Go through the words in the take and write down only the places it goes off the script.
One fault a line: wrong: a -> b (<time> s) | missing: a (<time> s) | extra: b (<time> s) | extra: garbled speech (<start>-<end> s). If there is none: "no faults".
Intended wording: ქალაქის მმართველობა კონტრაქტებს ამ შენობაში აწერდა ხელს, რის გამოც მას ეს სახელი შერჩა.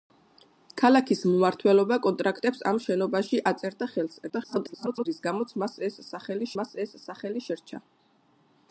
extra: garbled speech (4.3-5.1 s)
extra: მას ეს სახელი (6.6 s)